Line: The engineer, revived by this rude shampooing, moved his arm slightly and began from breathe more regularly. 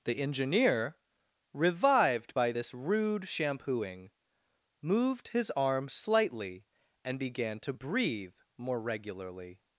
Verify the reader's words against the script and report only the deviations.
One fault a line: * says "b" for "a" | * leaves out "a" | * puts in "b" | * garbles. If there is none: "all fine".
* says "to" for "from"